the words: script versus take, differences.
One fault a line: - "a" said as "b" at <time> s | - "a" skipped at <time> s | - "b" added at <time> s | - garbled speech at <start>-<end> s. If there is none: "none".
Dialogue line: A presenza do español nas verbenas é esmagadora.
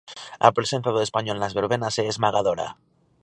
none